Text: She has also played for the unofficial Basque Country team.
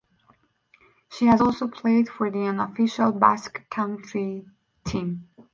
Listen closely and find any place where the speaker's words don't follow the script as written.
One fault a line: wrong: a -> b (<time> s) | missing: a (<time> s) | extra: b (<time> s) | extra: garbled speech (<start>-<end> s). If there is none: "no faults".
no faults